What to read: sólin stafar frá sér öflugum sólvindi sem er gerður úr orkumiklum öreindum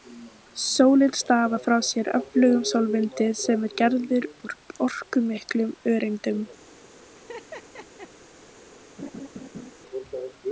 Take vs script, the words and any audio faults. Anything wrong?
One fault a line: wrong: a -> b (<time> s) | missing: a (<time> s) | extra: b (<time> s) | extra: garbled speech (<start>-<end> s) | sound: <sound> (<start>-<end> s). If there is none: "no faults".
sound: laugh (7.2-8.1 s)
sound: laugh (9.0-9.7 s)